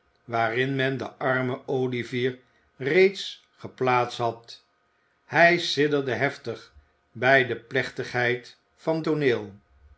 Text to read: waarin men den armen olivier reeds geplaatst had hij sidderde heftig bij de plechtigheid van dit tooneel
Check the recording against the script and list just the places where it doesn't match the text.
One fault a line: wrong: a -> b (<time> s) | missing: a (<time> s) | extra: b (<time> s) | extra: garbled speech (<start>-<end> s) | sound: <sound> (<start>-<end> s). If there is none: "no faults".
missing: dit (9.1 s)